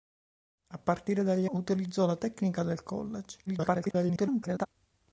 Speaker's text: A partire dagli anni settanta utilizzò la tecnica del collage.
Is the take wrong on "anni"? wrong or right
wrong